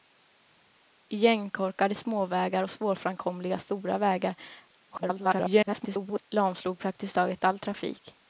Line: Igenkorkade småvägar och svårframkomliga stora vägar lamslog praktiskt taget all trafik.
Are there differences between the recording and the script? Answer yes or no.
yes